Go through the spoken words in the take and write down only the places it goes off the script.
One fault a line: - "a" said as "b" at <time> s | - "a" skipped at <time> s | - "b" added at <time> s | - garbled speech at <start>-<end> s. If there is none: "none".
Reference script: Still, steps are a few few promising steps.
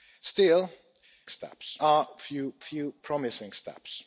none